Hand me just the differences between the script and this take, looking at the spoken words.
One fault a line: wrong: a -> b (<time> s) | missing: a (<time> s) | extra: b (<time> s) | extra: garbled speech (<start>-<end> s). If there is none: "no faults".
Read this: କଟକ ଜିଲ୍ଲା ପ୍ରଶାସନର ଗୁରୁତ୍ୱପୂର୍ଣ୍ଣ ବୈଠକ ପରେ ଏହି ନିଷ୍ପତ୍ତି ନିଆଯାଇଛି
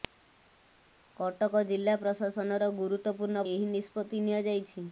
missing: ବୈଠକ ପରେ (3.4 s)